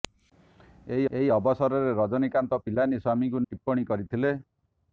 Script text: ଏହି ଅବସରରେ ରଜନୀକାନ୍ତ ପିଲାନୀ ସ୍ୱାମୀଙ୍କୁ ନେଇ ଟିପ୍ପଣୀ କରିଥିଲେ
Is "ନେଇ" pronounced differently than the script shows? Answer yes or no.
yes